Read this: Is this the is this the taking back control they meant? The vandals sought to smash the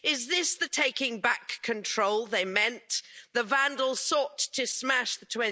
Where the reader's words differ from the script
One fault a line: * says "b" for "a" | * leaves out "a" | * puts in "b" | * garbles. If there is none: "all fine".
* leaves out "is this the"